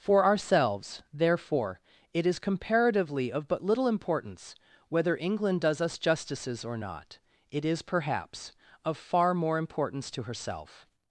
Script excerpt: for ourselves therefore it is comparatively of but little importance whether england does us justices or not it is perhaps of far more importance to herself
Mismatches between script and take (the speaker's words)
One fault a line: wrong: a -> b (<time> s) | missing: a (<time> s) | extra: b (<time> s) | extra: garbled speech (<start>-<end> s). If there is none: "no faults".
no faults